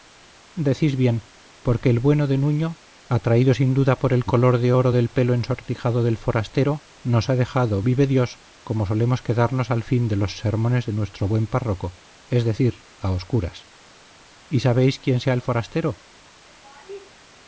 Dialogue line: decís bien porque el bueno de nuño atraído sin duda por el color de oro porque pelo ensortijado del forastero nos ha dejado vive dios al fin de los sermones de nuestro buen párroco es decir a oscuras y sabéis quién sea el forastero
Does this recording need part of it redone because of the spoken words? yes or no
yes